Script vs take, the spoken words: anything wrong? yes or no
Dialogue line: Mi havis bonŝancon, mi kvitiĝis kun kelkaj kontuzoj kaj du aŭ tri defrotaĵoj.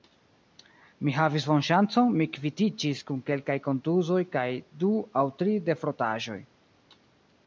no